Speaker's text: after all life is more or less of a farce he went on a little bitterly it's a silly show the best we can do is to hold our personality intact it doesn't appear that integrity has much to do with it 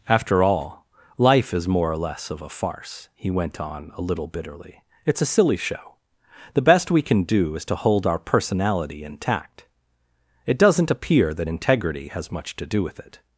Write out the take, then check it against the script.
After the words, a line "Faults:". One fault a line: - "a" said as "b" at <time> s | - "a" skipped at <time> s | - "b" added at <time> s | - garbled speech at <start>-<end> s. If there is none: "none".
after all life is more or less of a farce he went on a little bitterly it's a silly show the best we can do is to hold our personality intact it doesn't appear that integrity has much to do with it
Faults:
none